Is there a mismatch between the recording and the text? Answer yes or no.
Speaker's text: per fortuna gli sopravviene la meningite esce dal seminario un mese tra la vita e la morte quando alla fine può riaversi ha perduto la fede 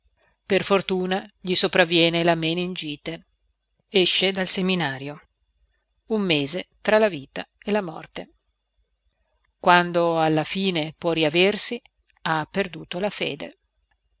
no